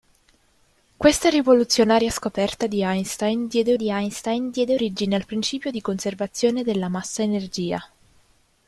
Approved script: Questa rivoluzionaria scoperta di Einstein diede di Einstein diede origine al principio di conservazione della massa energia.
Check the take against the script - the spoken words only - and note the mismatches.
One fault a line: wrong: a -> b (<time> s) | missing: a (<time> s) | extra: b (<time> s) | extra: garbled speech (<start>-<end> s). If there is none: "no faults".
no faults